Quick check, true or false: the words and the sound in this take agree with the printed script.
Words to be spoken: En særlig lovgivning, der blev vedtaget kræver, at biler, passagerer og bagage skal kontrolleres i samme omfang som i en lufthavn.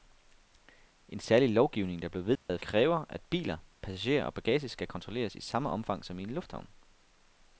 false